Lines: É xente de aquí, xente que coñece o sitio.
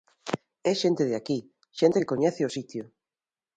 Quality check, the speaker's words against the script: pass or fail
pass